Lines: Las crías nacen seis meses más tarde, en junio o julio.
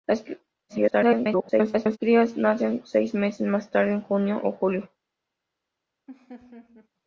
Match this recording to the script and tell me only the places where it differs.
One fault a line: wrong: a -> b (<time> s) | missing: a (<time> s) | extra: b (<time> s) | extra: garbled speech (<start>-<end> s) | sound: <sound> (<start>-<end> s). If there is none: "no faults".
extra: garbled speech (0.7-2.0 s)
sound: laugh (6.1-6.9 s)